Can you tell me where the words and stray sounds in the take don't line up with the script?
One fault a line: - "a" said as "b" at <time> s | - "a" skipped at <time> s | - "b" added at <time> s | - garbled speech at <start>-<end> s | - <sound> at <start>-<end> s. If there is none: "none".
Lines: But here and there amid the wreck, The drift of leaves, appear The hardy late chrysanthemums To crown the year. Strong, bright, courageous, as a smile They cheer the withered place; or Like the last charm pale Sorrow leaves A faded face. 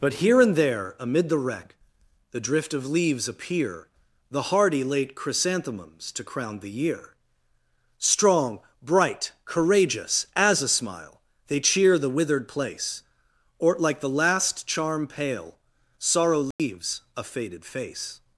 - dropout at 16.5-16.6 s